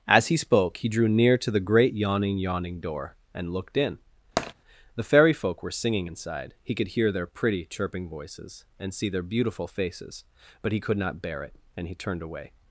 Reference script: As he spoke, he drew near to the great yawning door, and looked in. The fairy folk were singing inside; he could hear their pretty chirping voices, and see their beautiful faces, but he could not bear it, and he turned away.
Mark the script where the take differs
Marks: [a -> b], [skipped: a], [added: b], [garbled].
As he spoke, he drew near to the great yawning [added: yawning] door, and looked in. The fairy folk were singing inside; he could hear their pretty chirping voices, and see their beautiful faces, but he could not bear it, and he turned away.